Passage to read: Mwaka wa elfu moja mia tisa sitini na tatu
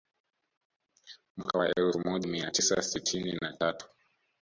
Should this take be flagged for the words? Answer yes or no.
no